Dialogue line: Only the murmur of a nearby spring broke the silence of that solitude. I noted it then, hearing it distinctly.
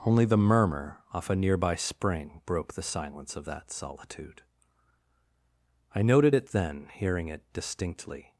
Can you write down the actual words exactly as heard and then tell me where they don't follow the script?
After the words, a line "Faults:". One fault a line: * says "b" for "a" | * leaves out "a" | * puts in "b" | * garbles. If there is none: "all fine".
Only the murmur off a nearby spring broke the silence of that solitude. I noted it then, hearing it distinctly.
Faults:
* says "off" for "of"